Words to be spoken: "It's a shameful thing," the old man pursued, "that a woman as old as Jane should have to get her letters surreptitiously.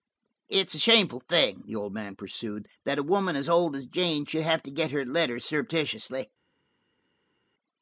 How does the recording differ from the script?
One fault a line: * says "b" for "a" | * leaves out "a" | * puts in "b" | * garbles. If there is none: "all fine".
all fine